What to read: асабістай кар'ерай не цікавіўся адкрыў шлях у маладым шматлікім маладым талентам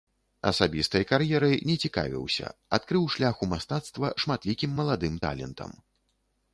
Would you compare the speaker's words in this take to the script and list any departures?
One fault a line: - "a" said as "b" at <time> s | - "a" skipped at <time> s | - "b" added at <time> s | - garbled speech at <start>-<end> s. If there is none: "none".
- "маладым" said as "мастацтва" at 3.5 s